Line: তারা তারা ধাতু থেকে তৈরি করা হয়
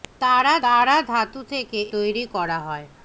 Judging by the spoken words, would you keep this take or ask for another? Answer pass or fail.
pass